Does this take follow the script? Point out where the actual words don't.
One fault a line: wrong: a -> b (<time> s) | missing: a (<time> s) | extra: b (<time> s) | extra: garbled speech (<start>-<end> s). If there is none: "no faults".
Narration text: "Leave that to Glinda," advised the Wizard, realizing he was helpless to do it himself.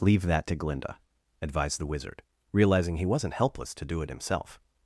wrong: was -> wasn't (3.0 s)